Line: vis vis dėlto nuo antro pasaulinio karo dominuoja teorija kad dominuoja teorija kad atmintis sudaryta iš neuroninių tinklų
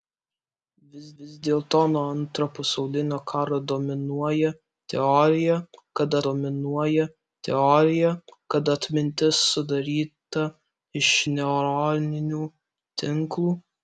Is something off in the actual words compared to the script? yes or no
no